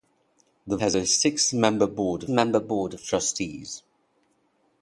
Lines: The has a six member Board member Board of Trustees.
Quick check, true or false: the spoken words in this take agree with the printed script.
true